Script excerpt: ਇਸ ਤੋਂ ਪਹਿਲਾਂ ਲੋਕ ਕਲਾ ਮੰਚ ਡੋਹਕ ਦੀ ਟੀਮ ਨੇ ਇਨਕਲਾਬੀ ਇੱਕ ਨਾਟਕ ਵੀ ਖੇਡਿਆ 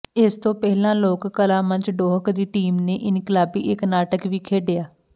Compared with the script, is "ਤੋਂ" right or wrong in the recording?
right